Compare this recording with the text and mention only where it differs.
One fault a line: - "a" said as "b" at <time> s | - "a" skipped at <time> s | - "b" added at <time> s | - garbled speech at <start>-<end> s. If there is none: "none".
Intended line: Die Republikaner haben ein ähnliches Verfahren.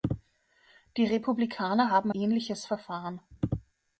- "ein" skipped at 2.1 s